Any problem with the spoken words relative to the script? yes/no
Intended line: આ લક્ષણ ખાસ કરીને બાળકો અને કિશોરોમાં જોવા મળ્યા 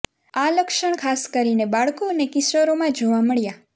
no